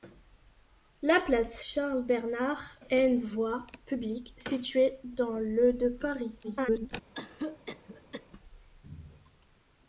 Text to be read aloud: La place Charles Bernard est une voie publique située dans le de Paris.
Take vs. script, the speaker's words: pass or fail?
fail